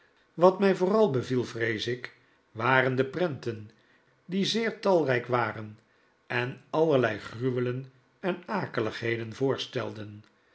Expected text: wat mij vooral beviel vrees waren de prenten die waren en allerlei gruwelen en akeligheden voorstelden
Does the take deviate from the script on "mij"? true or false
false